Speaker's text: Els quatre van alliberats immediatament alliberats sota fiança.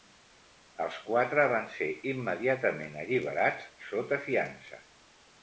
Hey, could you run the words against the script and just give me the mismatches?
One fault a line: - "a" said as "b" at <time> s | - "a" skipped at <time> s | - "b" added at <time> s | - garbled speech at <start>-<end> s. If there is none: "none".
- "alliberats" said as "ser" at 1.8 s